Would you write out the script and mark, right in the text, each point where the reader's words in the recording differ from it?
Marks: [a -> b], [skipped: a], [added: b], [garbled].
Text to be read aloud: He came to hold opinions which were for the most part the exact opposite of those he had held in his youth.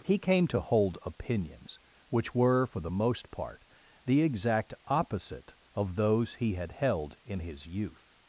He came to hold opinions which were for the most part the exact opposite of those he had held in his youth.